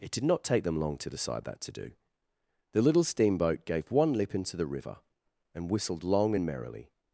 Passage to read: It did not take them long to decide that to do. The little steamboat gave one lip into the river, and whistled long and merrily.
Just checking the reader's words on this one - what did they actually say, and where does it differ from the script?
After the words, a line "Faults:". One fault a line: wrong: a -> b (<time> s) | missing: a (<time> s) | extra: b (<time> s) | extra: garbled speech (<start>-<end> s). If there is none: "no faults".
It did not take them long to decide that to do. The little steamboat gave one lip into the river, and whistled long and merrily.
Faults:
no faults